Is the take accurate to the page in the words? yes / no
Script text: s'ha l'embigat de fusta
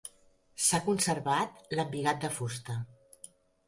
no